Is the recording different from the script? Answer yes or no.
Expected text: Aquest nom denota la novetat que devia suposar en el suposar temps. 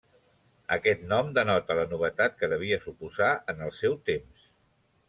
yes